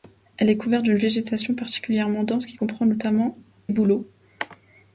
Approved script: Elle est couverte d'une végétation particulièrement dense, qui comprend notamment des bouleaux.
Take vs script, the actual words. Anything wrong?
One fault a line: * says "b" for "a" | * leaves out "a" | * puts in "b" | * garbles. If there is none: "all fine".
* leaves out "des"